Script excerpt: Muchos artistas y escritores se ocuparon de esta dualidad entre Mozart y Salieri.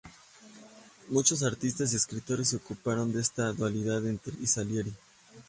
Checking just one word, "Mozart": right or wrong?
wrong